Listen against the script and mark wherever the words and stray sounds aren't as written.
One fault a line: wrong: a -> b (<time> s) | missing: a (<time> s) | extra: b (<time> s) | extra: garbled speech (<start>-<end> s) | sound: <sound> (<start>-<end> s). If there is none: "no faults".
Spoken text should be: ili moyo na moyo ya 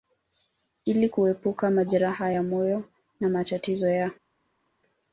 extra: kuepuka majeraha ya (1.1 s)
wrong: moyo -> matatizo (3.3 s)